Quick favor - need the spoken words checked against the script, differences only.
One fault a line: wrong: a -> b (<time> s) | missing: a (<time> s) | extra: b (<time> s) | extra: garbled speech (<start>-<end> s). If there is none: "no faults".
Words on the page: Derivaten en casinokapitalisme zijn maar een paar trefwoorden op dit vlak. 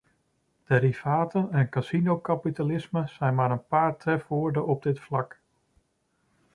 no faults